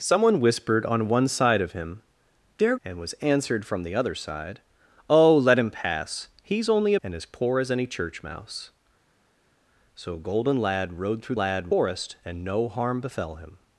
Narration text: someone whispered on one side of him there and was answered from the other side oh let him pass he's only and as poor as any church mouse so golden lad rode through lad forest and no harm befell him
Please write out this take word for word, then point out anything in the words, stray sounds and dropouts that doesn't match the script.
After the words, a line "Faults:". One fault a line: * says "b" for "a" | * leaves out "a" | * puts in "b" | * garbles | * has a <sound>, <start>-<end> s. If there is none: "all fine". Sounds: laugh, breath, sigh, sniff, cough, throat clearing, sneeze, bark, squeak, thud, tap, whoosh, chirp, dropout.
someone whispered on one side of him there and was answered from the other side oh let him pass he's only and as poor as any church mouse so golden lad rode through lad forest and no harm befell him
Faults:
all fine